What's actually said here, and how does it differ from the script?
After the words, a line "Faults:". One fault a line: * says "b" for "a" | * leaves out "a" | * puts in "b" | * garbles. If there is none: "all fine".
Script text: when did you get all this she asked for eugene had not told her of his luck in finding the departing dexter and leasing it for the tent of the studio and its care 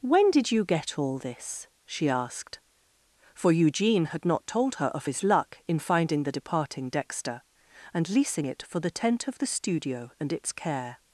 when did you get all this she asked for eugene had not told her of his luck in finding the departing dexter and leasing it for the tent of the studio and its care
Faults:
all fine